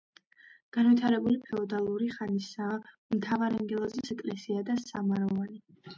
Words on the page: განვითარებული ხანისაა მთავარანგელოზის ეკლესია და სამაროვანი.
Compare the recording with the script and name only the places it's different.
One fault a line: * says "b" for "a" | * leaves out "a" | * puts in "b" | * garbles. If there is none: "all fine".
* puts in "ფეოდალური"